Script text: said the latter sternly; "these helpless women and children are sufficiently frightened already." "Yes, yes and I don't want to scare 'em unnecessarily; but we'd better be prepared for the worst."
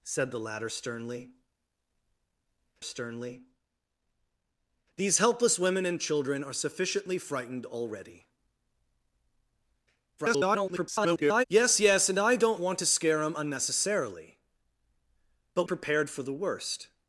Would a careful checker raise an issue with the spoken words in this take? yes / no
yes